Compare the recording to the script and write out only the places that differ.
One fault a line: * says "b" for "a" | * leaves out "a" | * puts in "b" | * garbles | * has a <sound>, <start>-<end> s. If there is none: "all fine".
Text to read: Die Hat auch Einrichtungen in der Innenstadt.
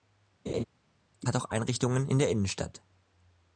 * has a laugh, 0.5-0.6 s